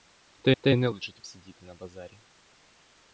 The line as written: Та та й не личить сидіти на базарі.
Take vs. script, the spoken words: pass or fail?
pass